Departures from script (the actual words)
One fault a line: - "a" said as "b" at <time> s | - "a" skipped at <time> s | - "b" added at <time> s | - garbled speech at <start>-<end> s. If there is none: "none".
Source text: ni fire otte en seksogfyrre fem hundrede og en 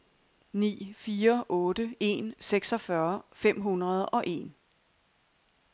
none